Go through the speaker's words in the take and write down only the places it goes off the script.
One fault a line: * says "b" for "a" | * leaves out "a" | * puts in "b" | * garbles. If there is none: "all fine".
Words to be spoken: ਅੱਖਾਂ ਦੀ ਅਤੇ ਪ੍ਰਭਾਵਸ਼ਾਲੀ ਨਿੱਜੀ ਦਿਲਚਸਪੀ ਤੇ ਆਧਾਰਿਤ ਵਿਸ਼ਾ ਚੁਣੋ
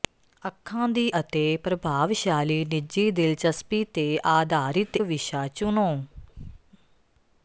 all fine